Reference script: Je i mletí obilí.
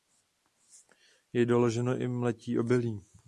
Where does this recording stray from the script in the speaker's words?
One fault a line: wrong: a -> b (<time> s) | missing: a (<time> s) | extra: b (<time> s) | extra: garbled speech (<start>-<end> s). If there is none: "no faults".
extra: doloženo (1.4 s)